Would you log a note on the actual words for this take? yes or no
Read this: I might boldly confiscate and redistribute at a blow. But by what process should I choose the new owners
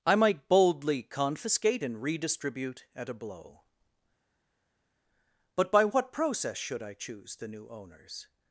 no